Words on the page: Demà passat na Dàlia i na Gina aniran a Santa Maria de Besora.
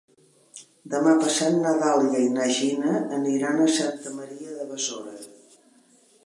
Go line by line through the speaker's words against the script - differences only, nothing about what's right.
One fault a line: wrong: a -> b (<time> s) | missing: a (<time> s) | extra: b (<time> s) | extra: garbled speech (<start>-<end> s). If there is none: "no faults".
no faults